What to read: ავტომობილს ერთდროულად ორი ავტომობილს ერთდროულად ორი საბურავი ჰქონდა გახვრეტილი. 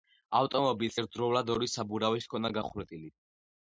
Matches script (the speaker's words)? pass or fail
fail